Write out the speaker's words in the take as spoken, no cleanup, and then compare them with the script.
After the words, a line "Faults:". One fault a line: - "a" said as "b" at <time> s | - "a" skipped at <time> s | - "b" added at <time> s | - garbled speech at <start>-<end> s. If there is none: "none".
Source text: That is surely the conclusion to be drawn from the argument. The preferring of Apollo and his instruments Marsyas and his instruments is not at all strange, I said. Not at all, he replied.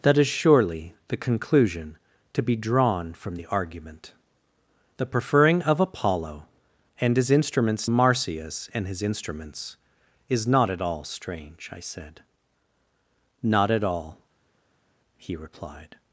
That is surely the conclusion to be drawn from the argument. The preferring of Apollo and his instruments Marsyas and his instruments is not at all strange, I said. Not at all, he replied.
Faults:
none